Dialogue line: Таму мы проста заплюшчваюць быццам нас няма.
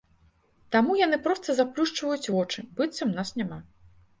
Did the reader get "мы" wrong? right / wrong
wrong